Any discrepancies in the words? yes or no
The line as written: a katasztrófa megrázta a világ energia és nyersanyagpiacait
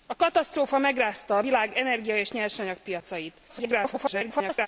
yes